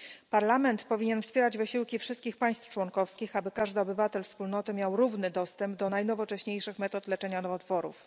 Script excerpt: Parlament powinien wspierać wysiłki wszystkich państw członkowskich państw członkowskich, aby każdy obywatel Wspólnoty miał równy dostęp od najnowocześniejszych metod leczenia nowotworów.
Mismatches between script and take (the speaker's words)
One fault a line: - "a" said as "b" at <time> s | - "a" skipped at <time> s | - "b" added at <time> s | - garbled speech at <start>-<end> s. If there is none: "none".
- "państw członkowskich" skipped at 3.4 s
- "od" said as "do" at 5.8 s